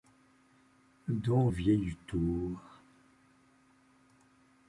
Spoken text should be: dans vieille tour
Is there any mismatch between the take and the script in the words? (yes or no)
no